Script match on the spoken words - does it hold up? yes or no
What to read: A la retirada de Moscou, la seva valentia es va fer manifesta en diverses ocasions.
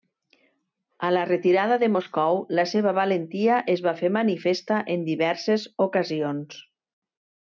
yes